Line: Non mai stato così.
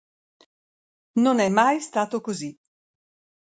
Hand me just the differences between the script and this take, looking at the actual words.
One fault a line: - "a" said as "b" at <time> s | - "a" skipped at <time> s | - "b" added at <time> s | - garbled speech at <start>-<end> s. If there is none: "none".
- "è" added at 1.4 s